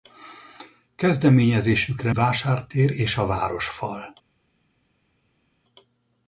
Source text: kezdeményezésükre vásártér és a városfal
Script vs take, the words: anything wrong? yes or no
no